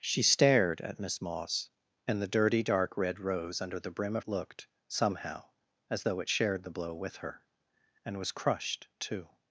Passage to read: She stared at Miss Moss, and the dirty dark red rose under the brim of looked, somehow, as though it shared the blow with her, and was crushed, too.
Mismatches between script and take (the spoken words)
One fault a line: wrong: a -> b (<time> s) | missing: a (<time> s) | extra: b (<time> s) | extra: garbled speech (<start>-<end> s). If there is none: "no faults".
no faults